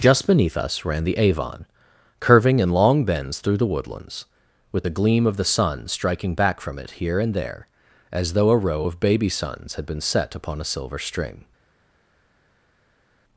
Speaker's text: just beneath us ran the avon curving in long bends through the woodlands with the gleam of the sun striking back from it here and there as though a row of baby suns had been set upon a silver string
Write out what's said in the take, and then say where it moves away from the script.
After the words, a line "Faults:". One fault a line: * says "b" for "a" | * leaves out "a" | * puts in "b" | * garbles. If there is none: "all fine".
just beneath us ran the avon curving in long bends through the woodlands with the gleam of the sun striking back from it here and there as though a row of baby suns had been set upon a silver string
Faults:
all fine